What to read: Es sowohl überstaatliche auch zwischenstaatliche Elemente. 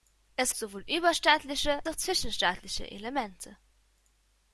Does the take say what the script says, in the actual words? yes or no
yes